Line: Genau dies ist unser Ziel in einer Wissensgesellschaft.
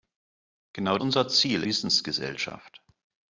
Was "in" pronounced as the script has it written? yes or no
no